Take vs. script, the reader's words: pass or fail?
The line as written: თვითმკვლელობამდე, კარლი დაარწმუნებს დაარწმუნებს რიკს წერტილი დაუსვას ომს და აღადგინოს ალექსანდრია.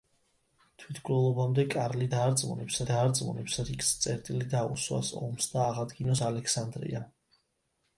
pass